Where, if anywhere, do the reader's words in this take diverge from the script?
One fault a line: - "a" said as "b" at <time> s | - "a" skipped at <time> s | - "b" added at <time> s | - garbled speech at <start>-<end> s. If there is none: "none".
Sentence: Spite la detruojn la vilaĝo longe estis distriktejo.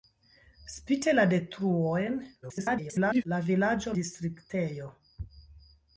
- garbled speech at 2.4-3.3 s
- "longe estis" skipped at 3.9 s